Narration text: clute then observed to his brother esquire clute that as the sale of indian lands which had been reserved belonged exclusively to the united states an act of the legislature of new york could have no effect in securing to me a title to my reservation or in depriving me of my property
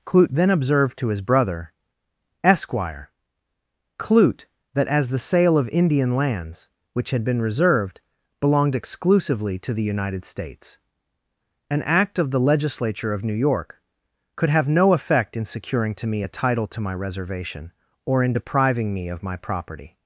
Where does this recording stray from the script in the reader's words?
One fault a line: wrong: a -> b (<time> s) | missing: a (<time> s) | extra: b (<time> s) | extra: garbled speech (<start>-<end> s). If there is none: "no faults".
no faults